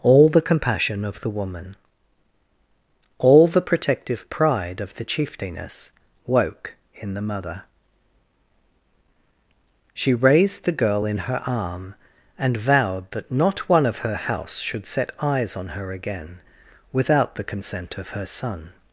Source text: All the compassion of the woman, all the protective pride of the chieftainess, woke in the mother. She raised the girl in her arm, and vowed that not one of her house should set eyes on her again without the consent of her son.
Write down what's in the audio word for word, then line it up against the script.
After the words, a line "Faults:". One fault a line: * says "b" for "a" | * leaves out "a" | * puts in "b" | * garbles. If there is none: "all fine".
All the compassion of the woman, all the protective pride of the chieftainess, woke in the mother. She raised the girl in her arm, and vowed that not one of her house should set eyes on her again without the consent of her son.
Faults:
all fine